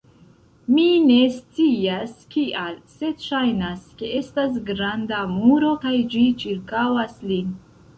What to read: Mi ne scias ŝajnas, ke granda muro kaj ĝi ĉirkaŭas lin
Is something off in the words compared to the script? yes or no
yes